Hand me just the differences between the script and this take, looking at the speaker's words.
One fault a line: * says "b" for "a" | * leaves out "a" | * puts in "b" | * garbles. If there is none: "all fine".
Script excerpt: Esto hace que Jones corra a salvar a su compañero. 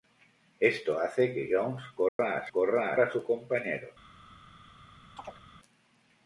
* says "corra" for "salvar"